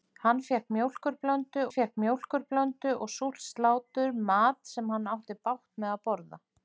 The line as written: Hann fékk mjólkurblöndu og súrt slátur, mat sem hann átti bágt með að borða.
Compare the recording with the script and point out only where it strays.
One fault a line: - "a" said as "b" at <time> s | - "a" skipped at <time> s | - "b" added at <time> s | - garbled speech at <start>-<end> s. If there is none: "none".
- "fékk mjólkurblöndu" added at 1.7 s